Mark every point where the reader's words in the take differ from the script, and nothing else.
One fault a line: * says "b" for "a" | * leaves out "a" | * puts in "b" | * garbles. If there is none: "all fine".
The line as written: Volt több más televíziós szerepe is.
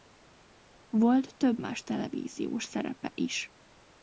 all fine